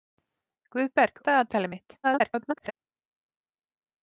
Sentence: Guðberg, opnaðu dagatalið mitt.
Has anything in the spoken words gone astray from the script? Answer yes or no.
yes